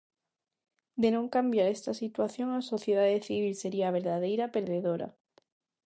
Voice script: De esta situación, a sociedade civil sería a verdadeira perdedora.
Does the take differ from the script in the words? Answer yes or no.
yes